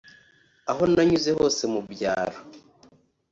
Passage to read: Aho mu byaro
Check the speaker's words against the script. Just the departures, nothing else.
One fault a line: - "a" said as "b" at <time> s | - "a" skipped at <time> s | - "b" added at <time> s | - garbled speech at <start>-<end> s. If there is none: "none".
- "nanyuze hose" added at 0.9 s